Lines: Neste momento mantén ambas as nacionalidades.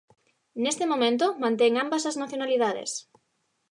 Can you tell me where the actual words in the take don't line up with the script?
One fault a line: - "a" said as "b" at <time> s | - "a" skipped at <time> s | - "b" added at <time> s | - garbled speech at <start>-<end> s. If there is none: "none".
none